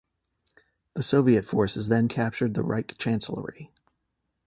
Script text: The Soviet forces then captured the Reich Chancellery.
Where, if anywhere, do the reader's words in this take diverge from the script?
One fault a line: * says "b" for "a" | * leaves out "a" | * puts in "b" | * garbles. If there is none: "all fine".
all fine